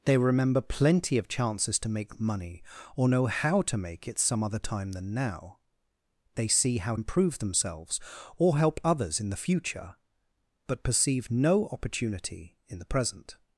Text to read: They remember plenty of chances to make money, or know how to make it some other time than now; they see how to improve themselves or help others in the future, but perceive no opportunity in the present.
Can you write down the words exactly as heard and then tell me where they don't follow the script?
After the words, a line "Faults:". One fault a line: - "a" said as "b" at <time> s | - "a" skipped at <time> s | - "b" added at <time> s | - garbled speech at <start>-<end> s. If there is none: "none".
They remember plenty of chances to make money, or know how to make it some other time than now; they see how improve themselves or help others in the future, but perceive no opportunity in the present.
Faults:
- "to" skipped at 7.0 s